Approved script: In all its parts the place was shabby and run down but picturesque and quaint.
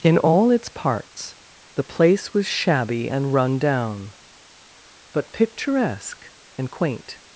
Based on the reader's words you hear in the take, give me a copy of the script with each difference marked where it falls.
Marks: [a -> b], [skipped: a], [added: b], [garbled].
In all its parts the place was shabby and run down but picturesque and quaint.